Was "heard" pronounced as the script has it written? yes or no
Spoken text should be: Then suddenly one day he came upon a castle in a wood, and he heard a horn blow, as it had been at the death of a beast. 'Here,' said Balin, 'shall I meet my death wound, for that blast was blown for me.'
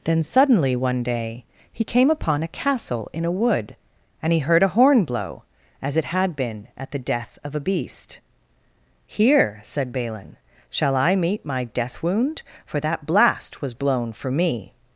yes